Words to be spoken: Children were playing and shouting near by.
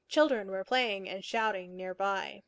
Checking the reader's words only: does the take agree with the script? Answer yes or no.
yes